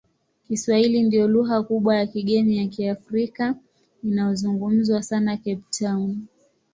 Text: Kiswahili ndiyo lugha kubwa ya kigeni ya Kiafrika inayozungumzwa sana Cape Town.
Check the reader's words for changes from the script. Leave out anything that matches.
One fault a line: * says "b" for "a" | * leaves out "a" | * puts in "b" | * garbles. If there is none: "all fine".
all fine